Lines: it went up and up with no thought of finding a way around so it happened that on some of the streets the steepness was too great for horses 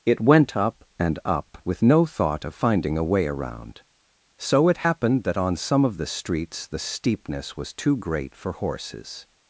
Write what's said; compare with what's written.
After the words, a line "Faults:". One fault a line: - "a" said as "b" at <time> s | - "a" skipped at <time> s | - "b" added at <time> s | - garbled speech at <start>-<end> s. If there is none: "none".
it went up and up with no thought of finding a way around so it happened that on some of the streets the steepness was too great for horses
Faults:
none